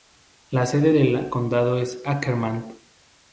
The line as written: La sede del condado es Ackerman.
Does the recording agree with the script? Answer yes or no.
yes